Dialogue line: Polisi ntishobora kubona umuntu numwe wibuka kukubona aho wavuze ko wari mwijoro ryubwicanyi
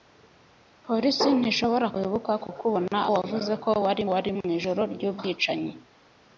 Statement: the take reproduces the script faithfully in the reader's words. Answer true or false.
false